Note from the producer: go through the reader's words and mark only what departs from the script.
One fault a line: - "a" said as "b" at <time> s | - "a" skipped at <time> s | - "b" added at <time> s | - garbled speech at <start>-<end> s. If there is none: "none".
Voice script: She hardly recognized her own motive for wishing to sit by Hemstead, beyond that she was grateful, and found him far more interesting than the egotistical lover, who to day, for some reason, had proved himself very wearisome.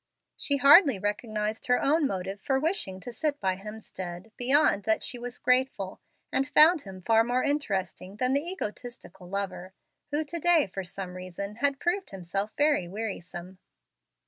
none